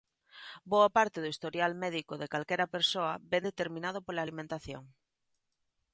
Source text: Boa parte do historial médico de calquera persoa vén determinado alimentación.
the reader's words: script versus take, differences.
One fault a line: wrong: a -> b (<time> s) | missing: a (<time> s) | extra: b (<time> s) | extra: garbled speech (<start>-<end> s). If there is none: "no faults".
extra: pola (4.1 s)